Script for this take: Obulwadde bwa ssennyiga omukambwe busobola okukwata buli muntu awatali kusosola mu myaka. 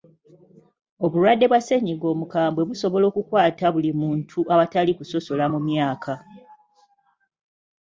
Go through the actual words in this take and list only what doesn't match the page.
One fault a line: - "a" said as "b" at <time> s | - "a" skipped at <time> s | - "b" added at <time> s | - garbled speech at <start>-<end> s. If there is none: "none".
none